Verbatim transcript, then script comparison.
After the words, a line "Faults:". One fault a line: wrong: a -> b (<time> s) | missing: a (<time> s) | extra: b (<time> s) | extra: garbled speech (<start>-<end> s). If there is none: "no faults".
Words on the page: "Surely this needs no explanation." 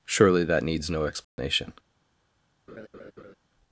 "Surely that needs no explanation."
Faults:
wrong: this -> that (0.4 s)